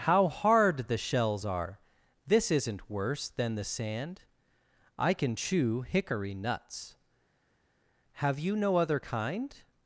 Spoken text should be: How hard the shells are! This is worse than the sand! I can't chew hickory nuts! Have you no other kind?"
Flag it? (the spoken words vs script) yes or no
yes